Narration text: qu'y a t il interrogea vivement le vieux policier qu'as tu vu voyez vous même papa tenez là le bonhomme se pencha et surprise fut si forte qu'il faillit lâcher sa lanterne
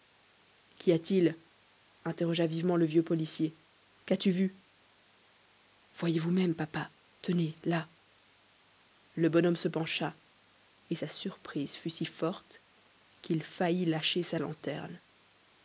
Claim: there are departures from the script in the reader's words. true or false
true